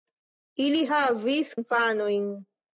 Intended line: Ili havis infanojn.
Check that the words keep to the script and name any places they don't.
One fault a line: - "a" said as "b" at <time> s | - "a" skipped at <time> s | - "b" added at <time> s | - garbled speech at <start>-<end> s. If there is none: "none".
none